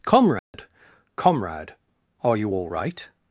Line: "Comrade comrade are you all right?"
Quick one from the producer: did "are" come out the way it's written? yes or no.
yes